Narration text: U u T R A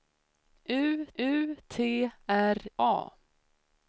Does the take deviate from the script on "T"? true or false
false